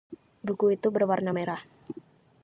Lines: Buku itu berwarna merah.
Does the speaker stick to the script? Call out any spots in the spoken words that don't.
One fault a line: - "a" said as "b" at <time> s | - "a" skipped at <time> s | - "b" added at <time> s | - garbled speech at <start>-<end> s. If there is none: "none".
none